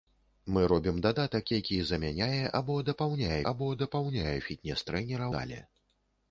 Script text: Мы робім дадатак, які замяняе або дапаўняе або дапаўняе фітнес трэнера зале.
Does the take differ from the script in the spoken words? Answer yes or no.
no